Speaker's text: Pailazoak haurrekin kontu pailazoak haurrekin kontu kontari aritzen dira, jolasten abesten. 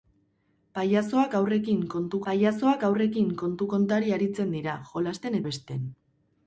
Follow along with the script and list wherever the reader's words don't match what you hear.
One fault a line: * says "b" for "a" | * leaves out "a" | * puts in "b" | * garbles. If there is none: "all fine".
all fine